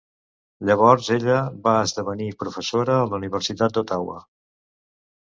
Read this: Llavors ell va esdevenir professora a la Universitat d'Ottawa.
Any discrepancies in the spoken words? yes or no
yes